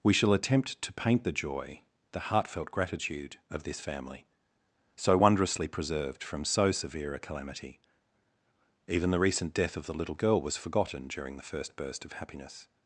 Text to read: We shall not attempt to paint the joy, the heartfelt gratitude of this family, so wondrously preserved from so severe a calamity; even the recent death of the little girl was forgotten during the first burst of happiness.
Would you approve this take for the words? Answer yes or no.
no